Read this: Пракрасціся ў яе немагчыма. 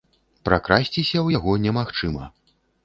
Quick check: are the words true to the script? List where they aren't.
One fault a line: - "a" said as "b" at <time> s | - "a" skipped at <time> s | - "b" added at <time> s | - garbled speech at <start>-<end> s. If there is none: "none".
- "яе" said as "яго" at 1.4 s